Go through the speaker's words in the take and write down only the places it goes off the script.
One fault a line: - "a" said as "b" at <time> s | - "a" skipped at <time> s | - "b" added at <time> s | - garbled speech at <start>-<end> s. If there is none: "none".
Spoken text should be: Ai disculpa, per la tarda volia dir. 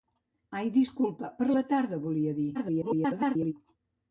- garbled speech at 2.5-3.5 s